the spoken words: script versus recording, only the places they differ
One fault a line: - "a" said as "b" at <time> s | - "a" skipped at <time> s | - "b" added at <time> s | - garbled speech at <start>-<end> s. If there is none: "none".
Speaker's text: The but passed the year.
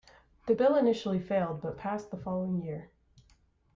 - "bill initially failed" added at 0.5 s
- "following" added at 2.2 s